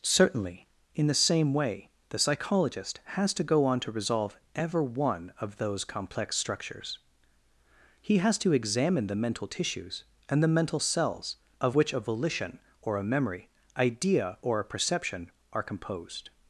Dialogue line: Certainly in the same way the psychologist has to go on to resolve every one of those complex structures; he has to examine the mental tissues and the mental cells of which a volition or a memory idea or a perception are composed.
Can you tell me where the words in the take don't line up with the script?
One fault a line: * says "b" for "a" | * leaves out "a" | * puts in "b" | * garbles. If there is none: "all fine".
* says "ever" for "every"